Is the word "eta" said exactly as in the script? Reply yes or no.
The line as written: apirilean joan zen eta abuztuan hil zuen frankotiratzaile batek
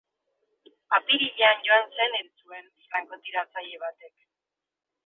no